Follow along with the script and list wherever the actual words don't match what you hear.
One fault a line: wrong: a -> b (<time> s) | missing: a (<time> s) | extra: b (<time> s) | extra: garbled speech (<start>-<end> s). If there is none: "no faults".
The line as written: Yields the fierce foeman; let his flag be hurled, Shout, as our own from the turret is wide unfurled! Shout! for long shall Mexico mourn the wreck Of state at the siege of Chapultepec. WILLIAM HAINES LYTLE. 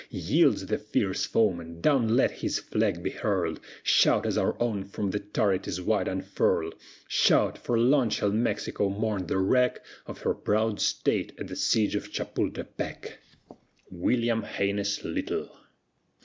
extra: down (1.8 s)
extra: her proud (10.2 s)